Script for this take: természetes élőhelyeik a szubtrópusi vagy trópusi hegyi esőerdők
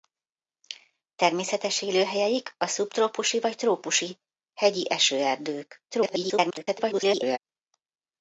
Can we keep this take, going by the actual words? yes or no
no